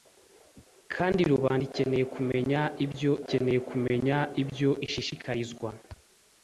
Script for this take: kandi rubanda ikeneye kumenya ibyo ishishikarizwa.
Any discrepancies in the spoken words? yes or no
yes